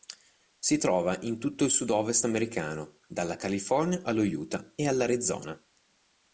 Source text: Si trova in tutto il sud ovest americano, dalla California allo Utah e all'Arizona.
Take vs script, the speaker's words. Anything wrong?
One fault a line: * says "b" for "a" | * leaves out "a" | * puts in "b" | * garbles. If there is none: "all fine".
all fine